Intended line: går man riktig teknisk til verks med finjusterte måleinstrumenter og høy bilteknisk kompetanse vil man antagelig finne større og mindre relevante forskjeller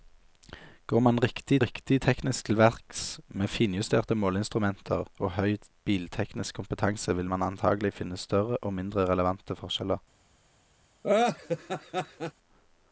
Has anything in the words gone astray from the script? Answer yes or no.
yes